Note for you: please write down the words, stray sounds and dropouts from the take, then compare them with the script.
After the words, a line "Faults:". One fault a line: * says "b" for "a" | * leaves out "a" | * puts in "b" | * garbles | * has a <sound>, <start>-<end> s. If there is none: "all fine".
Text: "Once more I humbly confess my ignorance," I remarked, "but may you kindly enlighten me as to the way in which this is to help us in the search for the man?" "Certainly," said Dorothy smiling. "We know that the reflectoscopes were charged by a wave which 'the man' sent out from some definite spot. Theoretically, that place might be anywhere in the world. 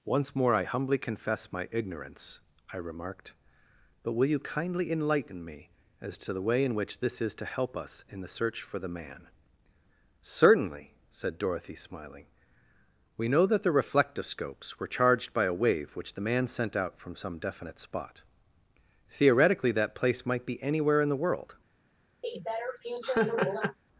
"Once more I humbly confess my ignorance," I remarked, "but will you kindly enlighten me as to the way in which this is to help us in the search for the man?" "Certainly," said Dorothy smiling. "We know that the reflectoscopes were charged by a wave which 'the man' sent out from some definite spot. Theoretically, that place might be anywhere in the world.
Faults:
* says "will" for "may"
* has a laugh, 22.2-23.8 s